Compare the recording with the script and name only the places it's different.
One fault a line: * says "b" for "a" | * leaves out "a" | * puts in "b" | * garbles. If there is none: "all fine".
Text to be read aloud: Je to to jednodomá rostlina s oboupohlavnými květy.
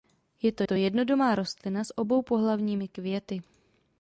all fine